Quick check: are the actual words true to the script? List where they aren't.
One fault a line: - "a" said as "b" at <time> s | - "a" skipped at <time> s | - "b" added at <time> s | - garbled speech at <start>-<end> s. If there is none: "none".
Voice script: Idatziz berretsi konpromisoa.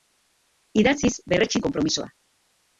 none